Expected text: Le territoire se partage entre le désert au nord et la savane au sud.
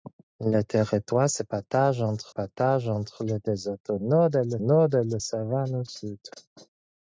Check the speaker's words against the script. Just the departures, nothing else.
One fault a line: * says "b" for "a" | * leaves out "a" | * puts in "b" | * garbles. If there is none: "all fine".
* puts in "partage entre"
* puts in "nord et la"